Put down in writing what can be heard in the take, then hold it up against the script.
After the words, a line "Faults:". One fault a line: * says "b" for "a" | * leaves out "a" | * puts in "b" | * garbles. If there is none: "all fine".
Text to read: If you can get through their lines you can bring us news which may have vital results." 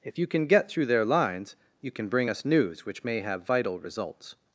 If you can get through their lines you can bring us news which may have vital results."
Faults:
all fine